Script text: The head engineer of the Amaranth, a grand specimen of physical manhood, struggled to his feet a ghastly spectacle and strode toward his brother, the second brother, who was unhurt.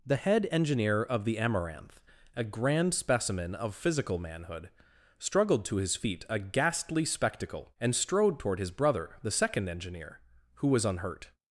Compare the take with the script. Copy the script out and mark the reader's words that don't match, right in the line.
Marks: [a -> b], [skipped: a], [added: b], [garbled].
The head engineer of the Amaranth, a grand specimen of physical manhood, struggled to his feet a ghastly spectacle and strode toward his brother, the second [brother, -> engineer] who was unhurt.